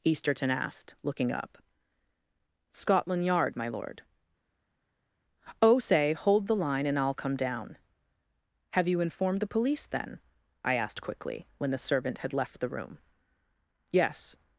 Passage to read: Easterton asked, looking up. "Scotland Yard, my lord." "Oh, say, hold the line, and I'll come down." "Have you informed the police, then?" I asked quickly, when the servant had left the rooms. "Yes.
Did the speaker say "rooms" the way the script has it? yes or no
no